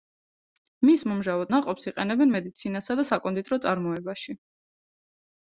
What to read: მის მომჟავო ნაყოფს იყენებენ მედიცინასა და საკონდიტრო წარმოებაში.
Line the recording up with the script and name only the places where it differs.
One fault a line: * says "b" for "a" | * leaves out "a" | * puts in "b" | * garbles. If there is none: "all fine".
all fine